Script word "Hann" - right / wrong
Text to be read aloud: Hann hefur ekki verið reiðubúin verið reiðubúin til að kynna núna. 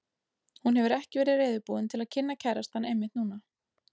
wrong